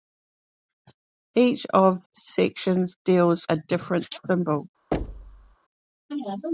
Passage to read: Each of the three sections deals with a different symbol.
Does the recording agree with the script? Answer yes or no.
no